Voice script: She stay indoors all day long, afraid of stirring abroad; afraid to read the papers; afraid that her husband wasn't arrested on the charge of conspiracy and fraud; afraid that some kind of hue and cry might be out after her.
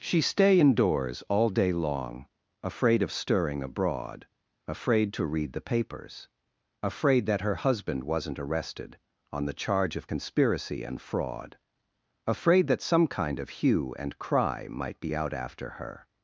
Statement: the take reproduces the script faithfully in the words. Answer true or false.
true